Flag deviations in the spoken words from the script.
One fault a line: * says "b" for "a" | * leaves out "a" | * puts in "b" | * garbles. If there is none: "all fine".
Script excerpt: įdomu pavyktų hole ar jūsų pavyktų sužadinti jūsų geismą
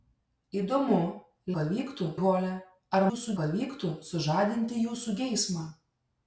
all fine